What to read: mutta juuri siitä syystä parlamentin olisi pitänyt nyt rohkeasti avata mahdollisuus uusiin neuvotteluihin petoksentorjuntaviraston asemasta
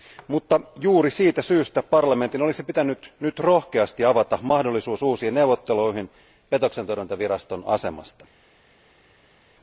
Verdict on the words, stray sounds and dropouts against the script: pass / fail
pass